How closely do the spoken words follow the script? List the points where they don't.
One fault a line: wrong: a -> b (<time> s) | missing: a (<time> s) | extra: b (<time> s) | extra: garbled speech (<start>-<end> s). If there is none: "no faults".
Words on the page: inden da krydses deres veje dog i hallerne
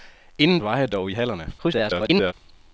missing: da krydses deres (0.6 s)
extra: garbled speech (1.6-2.3 s)